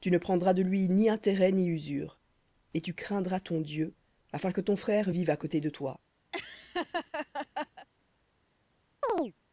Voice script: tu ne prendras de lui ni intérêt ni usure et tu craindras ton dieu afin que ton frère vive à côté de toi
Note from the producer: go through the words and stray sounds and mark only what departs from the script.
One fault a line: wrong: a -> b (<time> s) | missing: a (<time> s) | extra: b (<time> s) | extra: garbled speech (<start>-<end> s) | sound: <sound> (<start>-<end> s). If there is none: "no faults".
sound: laugh (6.3-7.9 s)
sound: chirp (9.0-9.3 s)